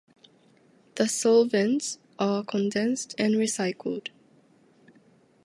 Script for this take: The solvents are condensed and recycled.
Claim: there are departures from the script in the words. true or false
false